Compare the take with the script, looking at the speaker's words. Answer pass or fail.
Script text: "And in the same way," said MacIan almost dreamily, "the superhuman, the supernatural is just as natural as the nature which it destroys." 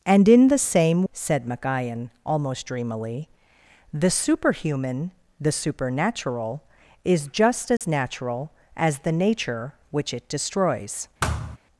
fail